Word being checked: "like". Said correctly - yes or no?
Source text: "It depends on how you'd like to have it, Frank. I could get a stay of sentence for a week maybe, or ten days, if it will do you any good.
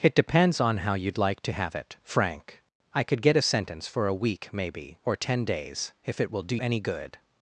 yes